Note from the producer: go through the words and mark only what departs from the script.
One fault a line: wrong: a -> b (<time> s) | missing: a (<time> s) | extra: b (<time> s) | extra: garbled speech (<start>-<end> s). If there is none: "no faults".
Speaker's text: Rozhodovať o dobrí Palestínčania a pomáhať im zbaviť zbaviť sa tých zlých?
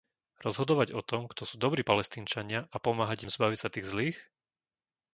extra: tom kto sú (1.1 s)
missing: zbaviť (3.6 s)